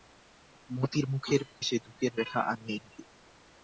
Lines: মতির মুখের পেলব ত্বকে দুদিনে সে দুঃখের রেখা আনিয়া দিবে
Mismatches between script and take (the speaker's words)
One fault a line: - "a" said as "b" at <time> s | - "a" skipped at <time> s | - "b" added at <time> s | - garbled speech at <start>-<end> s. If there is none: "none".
- "পেলব ত্বকে দুদিনে" skipped at 1.4 s